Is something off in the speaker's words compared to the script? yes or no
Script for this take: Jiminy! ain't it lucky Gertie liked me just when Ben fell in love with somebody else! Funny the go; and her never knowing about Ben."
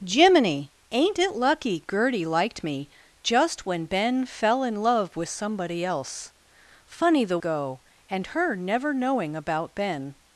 no